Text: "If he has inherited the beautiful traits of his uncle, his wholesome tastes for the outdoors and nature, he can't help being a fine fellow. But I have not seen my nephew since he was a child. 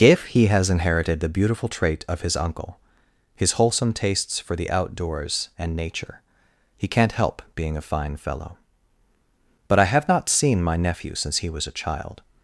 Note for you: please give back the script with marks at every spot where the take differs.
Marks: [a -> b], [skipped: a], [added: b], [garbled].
"If he has inherited the beautiful [traits -> trait] of his uncle, his wholesome tastes for the outdoors and nature, he can't help being a fine fellow. But I have not seen my nephew since he was a child.